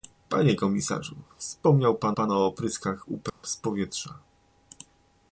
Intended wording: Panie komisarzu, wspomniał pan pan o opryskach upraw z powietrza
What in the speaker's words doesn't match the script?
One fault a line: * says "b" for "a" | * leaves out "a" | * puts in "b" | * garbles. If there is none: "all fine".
all fine